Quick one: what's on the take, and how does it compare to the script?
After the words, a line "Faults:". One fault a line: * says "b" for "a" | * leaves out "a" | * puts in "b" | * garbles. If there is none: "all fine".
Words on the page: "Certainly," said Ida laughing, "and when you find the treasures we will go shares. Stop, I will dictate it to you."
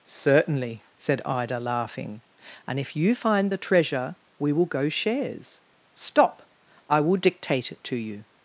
"Certainly," said Ida laughing, "and if you find the treasure we will go shares. Stop, I will dictate it to you."
Faults:
* says "if" for "when"
* says "treasure" for "treasures"